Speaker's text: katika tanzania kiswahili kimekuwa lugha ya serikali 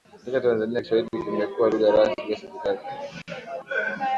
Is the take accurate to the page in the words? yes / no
no